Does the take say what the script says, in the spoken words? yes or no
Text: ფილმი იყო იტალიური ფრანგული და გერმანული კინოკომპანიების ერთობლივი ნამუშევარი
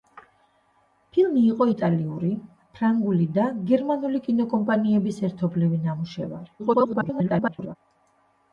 no